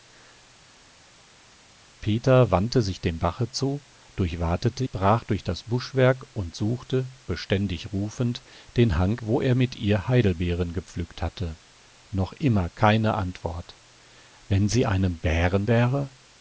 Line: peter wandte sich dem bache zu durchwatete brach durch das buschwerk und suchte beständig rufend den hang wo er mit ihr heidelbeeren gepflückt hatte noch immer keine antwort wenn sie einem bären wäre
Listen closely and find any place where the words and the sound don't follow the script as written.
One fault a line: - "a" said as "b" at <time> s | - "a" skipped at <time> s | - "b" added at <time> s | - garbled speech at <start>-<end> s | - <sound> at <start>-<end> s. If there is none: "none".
none